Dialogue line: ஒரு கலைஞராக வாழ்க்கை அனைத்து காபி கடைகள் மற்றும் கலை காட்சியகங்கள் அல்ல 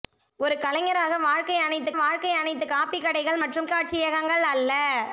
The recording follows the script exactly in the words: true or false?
false